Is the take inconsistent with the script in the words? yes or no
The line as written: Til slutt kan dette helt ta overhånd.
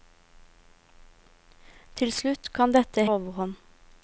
yes